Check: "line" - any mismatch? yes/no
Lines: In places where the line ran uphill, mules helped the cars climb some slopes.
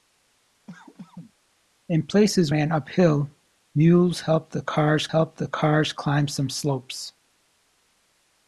yes